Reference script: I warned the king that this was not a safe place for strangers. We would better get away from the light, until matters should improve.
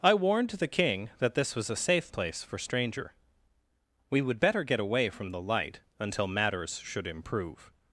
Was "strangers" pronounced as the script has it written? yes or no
no